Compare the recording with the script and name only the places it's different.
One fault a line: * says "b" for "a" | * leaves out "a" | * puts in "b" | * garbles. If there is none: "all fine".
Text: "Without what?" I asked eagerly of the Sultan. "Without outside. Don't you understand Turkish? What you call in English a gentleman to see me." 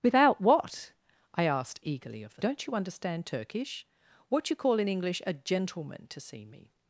* leaves out "Sultan Without outside"